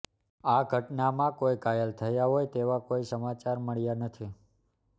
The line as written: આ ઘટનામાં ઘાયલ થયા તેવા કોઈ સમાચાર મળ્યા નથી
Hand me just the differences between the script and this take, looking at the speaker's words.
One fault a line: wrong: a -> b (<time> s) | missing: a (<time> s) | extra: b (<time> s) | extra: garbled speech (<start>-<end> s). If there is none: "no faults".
extra: કોઈ (1.4 s)
extra: હોય (2.3 s)